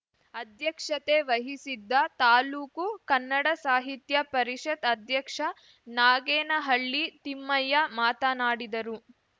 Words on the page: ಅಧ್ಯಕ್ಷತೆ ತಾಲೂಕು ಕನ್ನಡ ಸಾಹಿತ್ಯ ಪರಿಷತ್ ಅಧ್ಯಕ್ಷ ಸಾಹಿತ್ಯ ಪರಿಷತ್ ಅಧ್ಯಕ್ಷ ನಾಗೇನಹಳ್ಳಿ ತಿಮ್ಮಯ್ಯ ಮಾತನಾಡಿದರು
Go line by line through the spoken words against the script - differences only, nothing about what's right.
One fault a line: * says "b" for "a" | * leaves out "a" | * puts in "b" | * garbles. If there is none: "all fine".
* puts in "ವಹಿಸಿದ್ದ"
* leaves out "ಸಾಹಿತ್ಯ ಪರಿಷತ್ ಅಧ್ಯಕ್ಷ"